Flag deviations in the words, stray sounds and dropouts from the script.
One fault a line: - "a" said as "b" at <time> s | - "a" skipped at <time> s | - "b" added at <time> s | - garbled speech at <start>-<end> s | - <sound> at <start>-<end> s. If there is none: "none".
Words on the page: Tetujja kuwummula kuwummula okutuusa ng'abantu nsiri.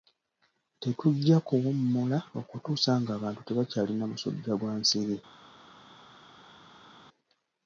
- "kuwummula" skipped at 2.2 s
- "tebakyalina musujja gwa" added at 3.5 s